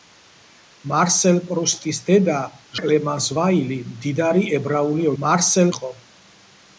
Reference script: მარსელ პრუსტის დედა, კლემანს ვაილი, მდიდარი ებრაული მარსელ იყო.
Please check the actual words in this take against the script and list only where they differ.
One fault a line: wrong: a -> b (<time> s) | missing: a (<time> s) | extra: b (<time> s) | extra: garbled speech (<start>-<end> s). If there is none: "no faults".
no faults